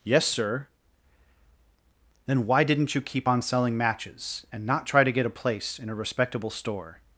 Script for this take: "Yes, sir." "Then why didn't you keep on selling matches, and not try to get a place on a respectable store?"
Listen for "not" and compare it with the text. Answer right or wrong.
right